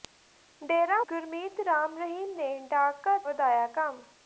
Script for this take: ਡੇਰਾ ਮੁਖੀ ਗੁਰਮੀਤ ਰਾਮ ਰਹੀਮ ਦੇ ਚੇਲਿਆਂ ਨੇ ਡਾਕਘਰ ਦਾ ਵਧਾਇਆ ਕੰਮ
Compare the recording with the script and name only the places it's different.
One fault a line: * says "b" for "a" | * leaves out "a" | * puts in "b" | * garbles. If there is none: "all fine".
* leaves out "ਮੁਖੀ"
* leaves out "ਦੇ ਚੇਲਿਆਂ"
* leaves out "ਦਾ"